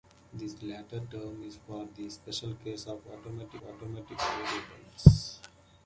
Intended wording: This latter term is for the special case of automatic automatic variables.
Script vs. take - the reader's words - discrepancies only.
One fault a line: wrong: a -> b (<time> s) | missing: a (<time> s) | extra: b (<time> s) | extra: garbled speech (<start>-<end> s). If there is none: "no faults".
no faults